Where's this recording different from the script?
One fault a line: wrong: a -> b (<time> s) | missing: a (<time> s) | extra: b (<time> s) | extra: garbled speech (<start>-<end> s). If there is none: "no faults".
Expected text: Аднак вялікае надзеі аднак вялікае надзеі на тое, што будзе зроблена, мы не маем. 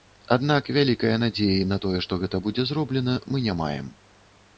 missing: аднак вялікае надзеі (1.7 s)
extra: гэта (2.2 s)